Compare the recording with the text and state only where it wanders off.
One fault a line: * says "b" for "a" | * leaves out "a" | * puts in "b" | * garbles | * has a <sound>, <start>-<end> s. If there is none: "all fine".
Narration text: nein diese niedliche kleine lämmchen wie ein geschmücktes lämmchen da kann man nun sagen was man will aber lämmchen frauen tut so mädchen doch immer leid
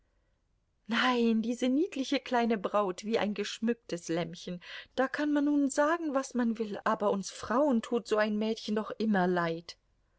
* says "braut" for "lämmchen"
* says "uns" for "lämmchen"
* puts in "ein"